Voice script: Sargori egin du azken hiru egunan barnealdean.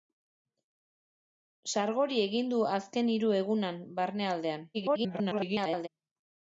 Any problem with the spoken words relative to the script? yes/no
yes